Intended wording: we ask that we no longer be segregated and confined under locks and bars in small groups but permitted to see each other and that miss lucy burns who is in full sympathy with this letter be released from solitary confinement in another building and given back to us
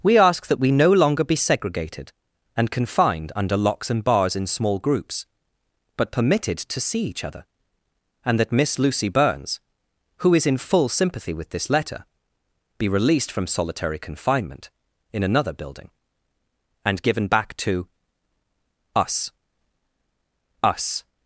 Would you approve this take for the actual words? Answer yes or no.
no